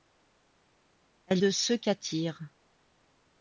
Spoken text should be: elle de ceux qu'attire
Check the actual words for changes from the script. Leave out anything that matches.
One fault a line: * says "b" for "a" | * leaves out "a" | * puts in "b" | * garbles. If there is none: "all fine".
all fine